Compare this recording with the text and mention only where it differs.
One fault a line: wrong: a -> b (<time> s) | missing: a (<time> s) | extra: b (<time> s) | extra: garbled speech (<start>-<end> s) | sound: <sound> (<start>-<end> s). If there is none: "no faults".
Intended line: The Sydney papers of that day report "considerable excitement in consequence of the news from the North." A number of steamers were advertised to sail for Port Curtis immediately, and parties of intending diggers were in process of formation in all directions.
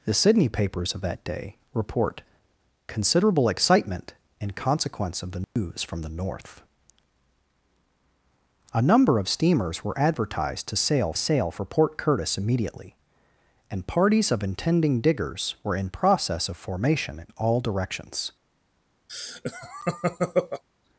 sound: dropout (5.4-5.6 s)
extra: sail (11.1 s)
sound: laugh (19.1-20.6 s)